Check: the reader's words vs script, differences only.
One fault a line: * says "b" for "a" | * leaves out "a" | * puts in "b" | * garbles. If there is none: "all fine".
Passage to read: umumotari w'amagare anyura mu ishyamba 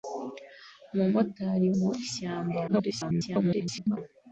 * leaves out "w'amagare anyura"
* garbles